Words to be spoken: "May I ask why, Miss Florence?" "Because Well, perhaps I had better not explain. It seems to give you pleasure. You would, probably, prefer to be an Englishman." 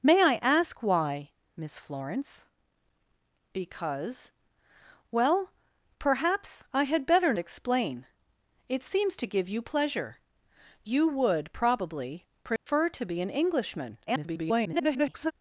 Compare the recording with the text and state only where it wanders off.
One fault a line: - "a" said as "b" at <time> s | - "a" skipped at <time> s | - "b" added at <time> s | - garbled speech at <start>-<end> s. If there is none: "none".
- "not" skipped at 7.3 s
- garbled speech at 14.1-15.3 s